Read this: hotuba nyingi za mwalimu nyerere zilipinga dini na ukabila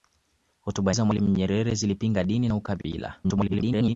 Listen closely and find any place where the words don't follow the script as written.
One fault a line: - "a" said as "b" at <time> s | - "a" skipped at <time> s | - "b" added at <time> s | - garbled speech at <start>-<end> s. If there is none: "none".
- "nyingi" skipped at 0.9 s
- garbled speech at 3.2-4.0 s